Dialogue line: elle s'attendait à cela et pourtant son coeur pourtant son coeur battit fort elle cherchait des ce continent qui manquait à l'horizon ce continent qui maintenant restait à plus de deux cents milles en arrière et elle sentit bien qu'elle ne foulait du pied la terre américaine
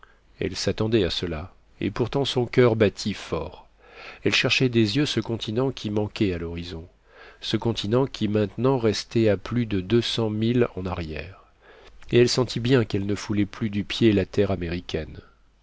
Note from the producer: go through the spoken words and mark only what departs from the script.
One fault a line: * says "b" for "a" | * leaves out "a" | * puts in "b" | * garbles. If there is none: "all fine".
* leaves out "pourtant son coeur"
* puts in "yeux"
* puts in "plus"